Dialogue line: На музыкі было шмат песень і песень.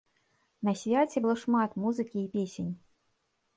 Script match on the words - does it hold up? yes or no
no